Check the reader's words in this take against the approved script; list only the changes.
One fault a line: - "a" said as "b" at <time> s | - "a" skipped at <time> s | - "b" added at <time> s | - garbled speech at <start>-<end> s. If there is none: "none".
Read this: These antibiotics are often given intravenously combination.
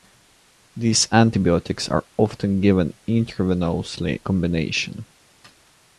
none